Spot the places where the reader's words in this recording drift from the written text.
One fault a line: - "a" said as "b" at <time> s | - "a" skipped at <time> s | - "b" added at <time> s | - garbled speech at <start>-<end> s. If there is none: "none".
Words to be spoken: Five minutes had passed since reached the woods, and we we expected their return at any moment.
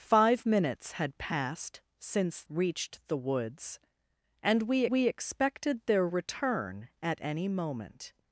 none